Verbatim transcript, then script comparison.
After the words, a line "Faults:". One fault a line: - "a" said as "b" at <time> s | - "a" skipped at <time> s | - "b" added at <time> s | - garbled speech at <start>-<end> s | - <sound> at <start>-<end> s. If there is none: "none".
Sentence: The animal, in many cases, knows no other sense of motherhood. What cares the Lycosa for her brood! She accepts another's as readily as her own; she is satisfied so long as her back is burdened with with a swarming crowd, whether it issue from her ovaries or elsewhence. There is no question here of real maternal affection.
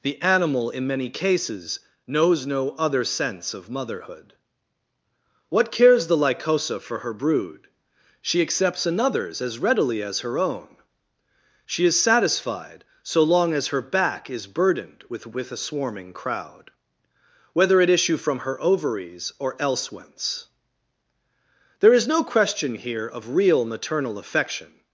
The animal, in many cases, knows no other sense of motherhood. What cares the Lycosa for her brood! She accepts another's as readily as her own; she is satisfied so long as her back is burdened with with a swarming crowd, whether it issue from her ovaries or elsewhence. There is no question here of real maternal affection.
Faults:
none